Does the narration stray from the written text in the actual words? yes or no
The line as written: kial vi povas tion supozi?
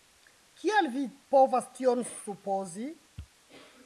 no